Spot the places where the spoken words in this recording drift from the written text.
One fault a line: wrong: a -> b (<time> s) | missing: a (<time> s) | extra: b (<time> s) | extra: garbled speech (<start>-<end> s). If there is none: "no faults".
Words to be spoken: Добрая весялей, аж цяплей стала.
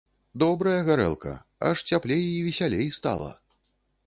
wrong: весялей -> гарэлка (0.9 s)
extra: і весялей (2.3 s)